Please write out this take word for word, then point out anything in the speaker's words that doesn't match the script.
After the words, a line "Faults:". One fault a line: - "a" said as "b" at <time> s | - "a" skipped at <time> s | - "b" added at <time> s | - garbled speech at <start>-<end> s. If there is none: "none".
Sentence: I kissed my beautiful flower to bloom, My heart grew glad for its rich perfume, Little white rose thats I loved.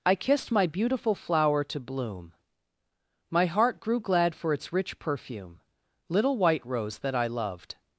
I kissed my beautiful flower to bloom, My heart grew glad for its rich perfume, Little white rose that I loved.
Faults:
- "thats" said as "that" at 7.0 s